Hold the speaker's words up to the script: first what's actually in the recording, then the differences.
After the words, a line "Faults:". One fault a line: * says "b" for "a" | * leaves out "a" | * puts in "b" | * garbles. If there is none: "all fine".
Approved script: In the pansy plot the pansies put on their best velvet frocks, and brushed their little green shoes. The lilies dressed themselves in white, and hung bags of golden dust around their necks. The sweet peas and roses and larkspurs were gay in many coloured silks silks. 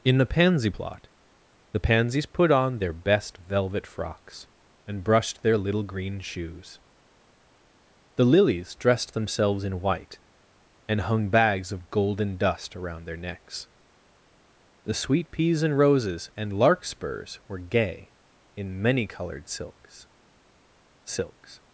In the pansy plot the pansies put on their best velvet frocks, and brushed their little green shoes. The lilies dressed themselves in white, and hung bags of golden dust around their necks. The sweet peas and roses and larkspurs were gay in many coloured silks silks.
Faults:
all fine